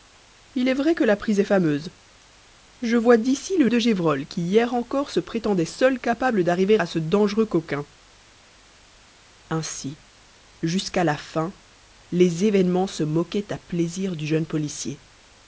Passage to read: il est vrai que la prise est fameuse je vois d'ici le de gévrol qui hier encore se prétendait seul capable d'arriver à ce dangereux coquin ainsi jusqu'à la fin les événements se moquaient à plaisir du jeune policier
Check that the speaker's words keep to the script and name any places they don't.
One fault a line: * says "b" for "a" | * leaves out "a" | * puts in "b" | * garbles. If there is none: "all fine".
all fine